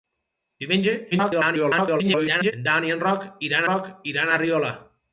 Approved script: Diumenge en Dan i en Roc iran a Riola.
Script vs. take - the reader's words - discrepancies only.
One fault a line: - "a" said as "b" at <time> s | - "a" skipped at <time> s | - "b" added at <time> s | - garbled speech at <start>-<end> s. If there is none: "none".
- garbled speech at 1.1-2.5 s
- "Roc iran" added at 3.7 s